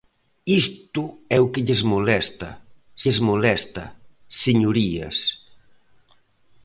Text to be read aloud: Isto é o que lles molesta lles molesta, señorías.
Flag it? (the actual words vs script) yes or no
no